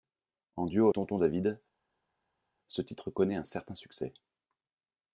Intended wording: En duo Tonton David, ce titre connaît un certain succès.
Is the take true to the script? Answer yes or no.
yes